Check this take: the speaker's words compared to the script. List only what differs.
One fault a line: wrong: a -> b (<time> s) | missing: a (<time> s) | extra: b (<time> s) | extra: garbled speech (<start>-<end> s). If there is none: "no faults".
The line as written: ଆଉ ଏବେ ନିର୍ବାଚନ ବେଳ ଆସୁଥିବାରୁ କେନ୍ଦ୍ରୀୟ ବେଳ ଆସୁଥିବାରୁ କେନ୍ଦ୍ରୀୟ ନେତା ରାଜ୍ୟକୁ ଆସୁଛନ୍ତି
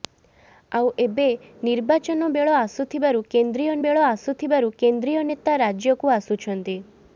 no faults